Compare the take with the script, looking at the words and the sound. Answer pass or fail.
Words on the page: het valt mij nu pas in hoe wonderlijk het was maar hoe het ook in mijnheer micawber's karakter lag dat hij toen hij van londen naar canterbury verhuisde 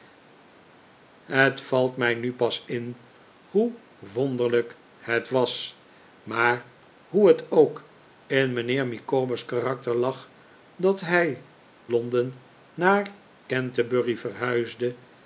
fail